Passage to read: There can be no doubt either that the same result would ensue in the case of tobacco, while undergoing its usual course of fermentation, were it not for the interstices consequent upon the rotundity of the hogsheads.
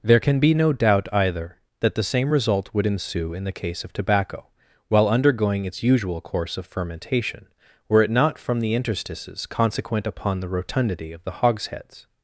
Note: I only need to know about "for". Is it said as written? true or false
false